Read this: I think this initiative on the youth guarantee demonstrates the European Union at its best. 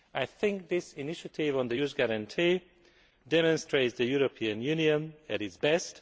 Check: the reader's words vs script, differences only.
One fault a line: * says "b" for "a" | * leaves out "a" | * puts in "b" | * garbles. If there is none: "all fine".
all fine